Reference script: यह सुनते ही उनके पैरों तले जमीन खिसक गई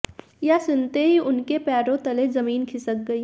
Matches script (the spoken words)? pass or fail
pass